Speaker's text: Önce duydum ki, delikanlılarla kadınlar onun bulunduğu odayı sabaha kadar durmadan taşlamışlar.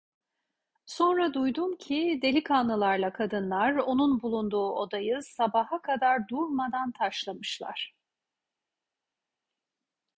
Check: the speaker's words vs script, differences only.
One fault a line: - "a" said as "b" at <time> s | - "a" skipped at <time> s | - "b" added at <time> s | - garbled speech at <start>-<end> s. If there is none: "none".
- "Önce" said as "Sonra" at 0.8 s